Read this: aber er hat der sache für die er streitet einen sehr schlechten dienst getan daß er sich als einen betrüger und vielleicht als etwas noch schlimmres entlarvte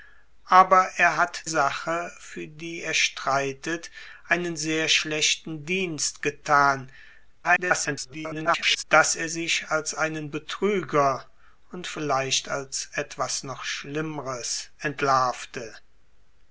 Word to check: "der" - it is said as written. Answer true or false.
false